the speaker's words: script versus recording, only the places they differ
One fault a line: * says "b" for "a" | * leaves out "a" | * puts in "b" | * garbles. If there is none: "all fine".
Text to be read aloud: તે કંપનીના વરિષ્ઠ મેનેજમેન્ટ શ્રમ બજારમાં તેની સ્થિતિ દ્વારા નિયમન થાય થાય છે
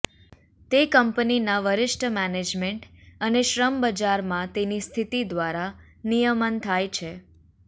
* puts in "અને"
* leaves out "થાય"